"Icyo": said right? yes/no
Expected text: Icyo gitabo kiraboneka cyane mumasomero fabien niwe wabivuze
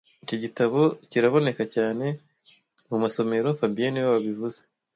no